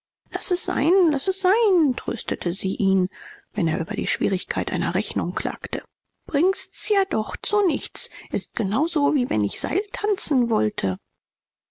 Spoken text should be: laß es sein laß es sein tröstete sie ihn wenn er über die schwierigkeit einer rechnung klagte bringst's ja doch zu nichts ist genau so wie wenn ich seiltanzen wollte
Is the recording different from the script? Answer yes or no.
no